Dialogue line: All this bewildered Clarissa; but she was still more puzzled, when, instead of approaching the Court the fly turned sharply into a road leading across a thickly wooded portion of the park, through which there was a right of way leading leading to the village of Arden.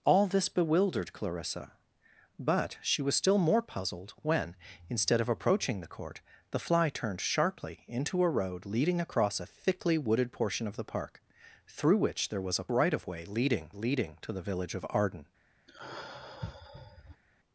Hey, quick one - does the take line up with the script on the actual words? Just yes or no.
yes